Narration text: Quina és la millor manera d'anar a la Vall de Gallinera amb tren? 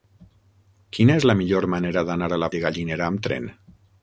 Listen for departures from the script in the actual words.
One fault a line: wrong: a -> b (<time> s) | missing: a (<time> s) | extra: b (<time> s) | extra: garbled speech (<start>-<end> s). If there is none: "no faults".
missing: Vall (2.5 s)